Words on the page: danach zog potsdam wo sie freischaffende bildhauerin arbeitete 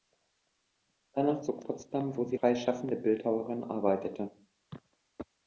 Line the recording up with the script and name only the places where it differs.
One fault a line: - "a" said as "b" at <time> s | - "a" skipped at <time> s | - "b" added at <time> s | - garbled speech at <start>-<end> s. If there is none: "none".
none